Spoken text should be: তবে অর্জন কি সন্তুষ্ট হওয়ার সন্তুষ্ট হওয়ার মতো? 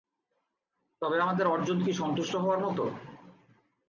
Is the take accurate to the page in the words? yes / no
no